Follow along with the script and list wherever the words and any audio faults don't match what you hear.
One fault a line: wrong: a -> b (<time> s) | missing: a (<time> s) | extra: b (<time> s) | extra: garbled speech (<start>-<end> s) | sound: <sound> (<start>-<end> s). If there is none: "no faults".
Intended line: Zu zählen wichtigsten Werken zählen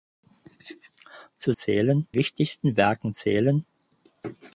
no faults